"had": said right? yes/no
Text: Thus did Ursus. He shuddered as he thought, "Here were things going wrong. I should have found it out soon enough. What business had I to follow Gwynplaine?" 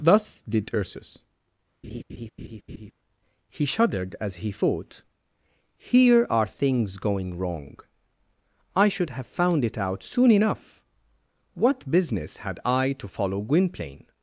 yes